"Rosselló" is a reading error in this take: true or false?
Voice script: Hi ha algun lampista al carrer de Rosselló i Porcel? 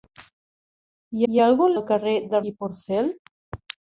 true